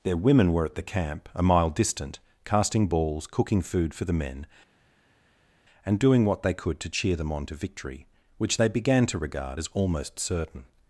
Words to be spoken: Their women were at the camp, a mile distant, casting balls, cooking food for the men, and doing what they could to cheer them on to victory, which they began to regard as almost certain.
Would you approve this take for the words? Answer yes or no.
yes